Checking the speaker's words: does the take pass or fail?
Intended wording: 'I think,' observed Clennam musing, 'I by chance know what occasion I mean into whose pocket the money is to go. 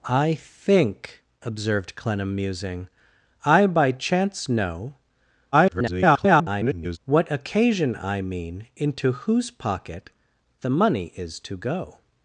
fail